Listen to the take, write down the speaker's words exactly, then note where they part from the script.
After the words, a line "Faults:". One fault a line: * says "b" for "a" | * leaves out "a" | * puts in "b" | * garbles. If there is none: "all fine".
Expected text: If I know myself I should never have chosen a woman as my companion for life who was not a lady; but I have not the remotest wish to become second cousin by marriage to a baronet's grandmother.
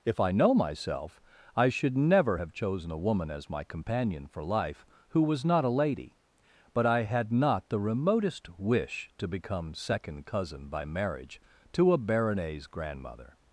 If I know myself I should never have chosen a woman as my companion for life who was not a lady; but I had not the remotest wish to become second cousin by marriage to a baronet's grandmother.
Faults:
* says "had" for "have"